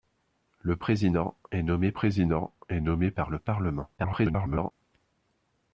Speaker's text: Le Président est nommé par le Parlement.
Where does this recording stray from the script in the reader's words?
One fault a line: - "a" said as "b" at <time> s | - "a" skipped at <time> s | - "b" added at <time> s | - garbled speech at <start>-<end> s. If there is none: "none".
- "Président est nommé" added at 1.9 s
- garbled speech at 4.0-4.7 s